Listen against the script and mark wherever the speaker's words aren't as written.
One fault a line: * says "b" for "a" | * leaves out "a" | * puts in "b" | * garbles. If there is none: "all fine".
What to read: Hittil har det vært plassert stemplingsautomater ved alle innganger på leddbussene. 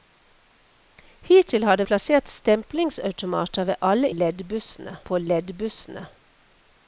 * leaves out "vært"
* says "leddbussene" for "innganger"